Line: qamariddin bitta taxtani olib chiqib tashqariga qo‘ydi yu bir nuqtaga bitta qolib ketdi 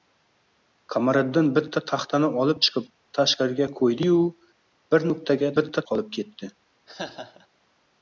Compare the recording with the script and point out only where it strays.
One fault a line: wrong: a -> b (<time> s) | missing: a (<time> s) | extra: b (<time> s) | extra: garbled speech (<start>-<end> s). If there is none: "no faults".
no faults